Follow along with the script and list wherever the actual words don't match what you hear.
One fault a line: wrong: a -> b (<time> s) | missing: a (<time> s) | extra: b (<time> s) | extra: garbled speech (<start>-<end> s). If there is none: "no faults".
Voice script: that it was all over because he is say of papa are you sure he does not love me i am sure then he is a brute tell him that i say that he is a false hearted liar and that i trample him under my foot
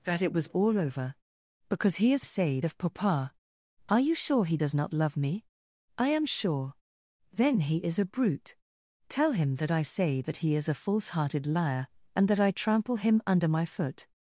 no faults